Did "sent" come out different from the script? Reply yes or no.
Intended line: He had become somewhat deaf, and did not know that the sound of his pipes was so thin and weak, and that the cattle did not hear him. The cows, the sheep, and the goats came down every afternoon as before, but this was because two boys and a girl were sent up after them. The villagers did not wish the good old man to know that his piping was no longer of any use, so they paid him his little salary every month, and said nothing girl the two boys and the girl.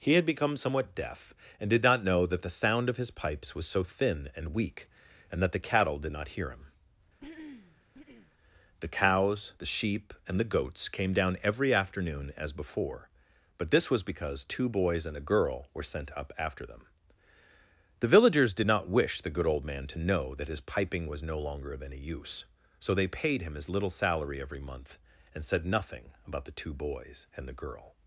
no